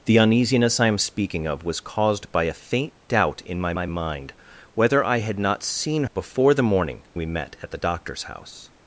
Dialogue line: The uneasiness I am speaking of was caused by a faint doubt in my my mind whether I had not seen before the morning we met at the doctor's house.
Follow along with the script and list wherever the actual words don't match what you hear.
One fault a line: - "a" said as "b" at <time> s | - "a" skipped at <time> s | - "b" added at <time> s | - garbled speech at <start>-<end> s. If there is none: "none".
none